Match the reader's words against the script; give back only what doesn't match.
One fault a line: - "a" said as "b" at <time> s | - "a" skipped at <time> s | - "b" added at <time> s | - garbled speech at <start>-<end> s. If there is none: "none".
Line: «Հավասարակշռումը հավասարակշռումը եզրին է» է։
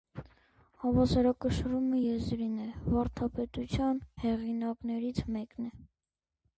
- "հավասարակշռումը" skipped at 2.0 s
- "վարդապետության հեղինակներից մեկն" added at 2.9 s